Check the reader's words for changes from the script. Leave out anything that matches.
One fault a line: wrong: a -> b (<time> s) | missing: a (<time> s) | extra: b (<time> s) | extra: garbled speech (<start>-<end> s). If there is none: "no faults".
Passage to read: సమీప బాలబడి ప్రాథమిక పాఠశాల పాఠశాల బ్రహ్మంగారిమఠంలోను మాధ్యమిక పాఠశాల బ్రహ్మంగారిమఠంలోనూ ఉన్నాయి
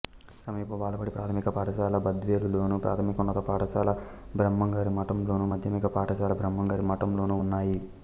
extra: బద్వేలులోను ప్రాథమికోన్నత (2.1 s)